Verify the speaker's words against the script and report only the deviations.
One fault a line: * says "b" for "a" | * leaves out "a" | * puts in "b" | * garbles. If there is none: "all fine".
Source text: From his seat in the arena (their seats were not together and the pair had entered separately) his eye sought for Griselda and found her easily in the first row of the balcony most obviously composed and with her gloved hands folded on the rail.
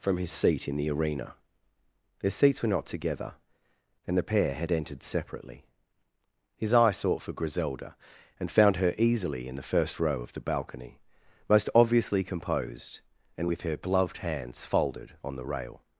all fine